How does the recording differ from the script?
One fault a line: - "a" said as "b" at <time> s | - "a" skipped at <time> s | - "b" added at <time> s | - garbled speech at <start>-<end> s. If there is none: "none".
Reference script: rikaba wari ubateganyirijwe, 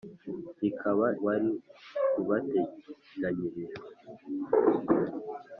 none